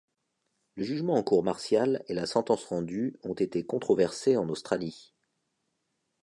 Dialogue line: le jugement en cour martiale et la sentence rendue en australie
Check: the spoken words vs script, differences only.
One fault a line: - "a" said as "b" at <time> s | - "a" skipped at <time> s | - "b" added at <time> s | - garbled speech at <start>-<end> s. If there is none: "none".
- "ont été controversés" added at 3.2 s